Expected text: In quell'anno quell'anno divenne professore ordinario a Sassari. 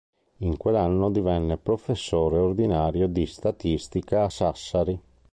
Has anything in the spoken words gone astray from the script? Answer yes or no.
yes